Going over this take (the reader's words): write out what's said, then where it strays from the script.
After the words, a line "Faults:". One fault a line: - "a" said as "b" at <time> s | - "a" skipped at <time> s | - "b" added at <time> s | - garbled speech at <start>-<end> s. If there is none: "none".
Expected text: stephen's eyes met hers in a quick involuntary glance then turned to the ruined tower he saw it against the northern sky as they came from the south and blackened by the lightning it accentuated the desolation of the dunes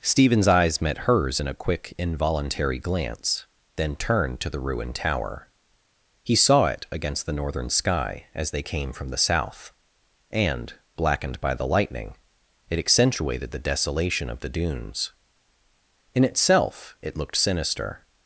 stephen's eyes met hers in a quick involuntary glance then turned to the ruined tower he saw it against the northern sky as they came from the south and blackened by the lightning it accentuated the desolation of the dunes in itself it looked sinister
Faults:
- "in itself it looked sinister" added at 16.1 s